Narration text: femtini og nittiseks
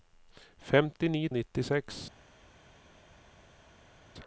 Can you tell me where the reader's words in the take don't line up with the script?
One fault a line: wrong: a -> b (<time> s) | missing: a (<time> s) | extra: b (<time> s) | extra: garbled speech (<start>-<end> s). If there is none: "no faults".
no faults